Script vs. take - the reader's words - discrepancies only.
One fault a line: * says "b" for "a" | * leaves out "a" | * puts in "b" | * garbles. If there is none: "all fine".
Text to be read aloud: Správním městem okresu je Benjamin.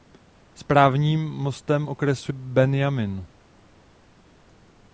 * leaves out "je"